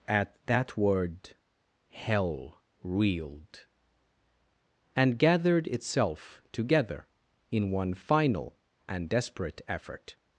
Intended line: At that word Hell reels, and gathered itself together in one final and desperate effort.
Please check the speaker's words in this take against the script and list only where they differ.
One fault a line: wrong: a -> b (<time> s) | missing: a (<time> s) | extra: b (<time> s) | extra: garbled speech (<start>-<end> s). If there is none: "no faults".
wrong: reels -> reeled (2.8 s)